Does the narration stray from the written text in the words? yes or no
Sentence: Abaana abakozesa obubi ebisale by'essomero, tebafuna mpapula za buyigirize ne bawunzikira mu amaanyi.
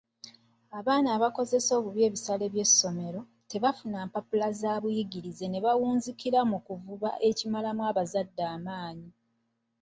yes